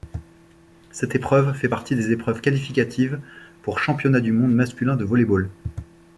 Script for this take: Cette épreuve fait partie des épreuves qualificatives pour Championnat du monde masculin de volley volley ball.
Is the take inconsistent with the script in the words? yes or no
yes